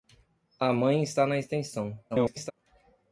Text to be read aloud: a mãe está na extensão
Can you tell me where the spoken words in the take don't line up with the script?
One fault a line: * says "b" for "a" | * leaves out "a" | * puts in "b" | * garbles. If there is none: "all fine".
* garbles